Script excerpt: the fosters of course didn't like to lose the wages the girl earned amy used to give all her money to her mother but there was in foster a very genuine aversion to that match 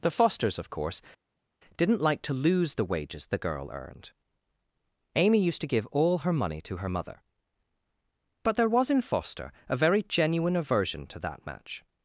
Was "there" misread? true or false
false